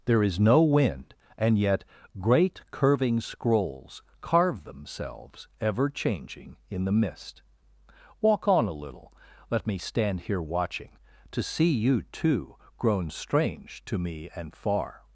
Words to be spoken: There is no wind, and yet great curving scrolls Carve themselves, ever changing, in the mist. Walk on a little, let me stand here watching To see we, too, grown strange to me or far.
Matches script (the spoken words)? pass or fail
fail